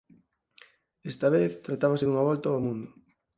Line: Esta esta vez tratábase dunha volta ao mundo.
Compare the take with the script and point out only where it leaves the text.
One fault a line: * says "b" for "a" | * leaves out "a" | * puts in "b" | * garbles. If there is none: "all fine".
* leaves out "esta"